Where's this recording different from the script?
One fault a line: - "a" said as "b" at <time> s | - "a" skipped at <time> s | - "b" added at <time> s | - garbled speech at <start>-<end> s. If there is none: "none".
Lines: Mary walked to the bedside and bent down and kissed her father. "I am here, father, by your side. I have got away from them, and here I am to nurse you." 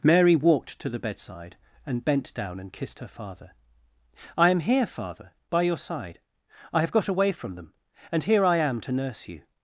none